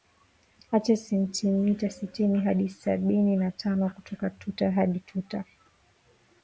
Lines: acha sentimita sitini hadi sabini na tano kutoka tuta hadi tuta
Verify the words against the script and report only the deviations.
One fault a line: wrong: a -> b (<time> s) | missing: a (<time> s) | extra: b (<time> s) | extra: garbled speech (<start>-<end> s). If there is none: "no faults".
no faults